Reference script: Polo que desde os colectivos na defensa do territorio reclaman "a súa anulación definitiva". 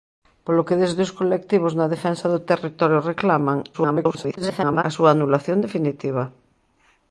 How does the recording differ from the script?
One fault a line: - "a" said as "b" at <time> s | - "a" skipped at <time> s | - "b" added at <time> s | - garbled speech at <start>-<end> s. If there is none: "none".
- garbled speech at 3.7-4.8 s